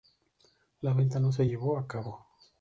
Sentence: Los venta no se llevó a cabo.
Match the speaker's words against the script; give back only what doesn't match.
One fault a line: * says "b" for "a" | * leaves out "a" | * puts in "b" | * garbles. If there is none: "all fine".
* says "La" for "Los"